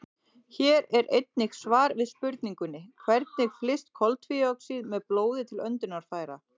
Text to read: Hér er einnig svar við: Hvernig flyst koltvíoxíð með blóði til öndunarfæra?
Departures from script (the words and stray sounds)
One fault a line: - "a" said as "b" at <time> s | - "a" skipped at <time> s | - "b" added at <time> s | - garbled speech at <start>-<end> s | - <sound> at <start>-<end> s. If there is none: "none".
- "spurningunni" added at 2.1 s